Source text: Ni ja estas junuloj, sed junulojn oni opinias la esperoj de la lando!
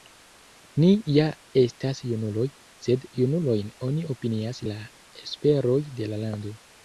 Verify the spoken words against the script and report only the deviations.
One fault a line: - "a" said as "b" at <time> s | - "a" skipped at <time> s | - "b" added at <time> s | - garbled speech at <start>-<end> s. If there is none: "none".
none